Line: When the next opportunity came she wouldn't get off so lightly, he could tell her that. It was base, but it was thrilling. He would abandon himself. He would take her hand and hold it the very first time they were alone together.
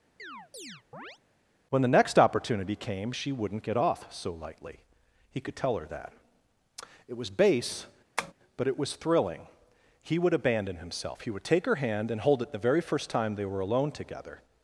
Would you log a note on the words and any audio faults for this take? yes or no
yes